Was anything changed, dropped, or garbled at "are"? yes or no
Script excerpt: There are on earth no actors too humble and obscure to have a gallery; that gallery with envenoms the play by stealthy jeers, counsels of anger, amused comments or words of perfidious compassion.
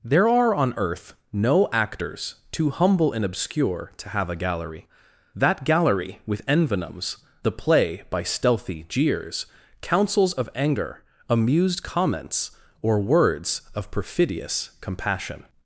no